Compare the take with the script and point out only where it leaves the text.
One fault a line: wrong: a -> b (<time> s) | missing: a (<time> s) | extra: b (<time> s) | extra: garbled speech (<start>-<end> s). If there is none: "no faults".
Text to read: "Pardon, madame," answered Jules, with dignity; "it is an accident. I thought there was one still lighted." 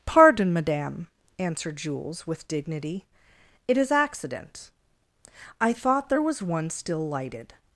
missing: an (3.9 s)